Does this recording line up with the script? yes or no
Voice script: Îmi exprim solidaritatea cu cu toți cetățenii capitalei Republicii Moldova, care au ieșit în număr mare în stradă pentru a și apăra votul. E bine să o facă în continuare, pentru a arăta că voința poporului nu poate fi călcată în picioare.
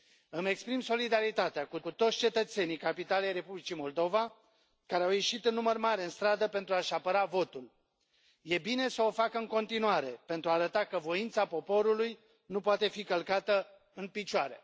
yes